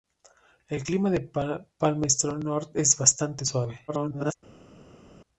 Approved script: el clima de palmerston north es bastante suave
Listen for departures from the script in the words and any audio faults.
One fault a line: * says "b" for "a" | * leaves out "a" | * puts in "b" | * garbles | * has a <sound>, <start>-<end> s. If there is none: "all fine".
* garbles